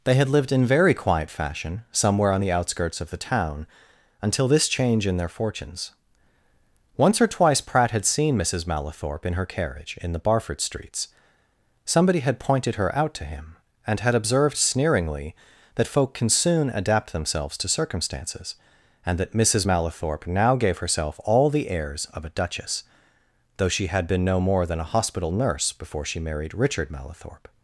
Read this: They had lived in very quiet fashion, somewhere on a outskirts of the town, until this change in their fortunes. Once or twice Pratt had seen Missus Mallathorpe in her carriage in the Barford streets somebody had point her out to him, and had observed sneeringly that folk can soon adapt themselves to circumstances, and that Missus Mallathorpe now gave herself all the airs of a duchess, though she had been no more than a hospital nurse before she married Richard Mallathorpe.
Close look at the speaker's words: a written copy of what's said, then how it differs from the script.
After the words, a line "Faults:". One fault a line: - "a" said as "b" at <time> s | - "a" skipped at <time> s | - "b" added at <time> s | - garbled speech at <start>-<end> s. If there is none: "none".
They had lived in very quiet fashion, somewhere on the outskirts of the town, until this change in their fortunes. Once or twice Pratt had seen Missus Mallathorpe in her carriage in the Barford streets somebody had pointed her out to him, and had observed sneeringly that folk can soon adapt themselves to circumstances, and that Missus Mallathorpe now gave herself all the airs of a duchess, though she had been no more than a hospital nurse before she married Richard Mallathorpe.
Faults:
- "a" said as "the" at 2.4 s
- "point" said as "pointed" at 12.4 s